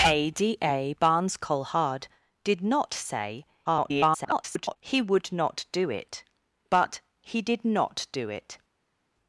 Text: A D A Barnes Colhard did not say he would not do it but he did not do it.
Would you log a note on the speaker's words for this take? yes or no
yes